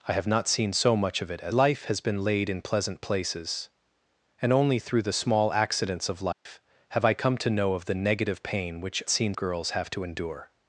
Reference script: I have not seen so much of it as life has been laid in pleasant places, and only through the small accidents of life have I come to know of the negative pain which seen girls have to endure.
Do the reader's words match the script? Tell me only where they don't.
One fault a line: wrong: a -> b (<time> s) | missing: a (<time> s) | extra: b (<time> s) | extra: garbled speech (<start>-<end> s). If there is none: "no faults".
no faults